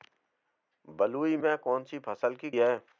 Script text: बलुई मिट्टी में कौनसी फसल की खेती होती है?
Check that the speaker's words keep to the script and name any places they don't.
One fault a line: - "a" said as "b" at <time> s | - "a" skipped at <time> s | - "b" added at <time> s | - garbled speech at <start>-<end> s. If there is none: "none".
- "मिट्टी" skipped at 1.4 s
- "खेती होती" skipped at 2.5 s